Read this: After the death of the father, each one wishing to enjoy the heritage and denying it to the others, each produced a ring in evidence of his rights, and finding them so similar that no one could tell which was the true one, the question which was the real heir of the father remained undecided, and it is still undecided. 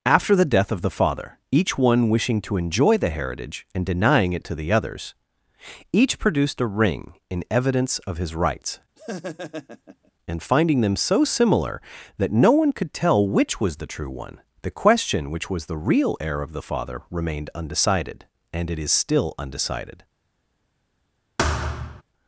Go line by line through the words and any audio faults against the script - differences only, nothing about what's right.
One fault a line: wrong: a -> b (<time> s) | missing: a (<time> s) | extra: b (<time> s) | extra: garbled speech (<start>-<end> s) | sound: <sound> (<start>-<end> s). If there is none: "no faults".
sound: laugh (9.0-10.1 s)
sound: thud (21.4-22.0 s)